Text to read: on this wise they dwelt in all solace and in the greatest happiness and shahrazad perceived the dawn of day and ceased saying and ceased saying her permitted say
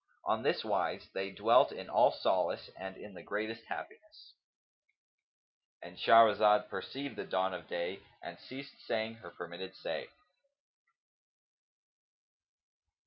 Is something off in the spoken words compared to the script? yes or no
yes